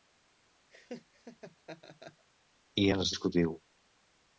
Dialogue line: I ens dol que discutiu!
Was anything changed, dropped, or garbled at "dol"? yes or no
yes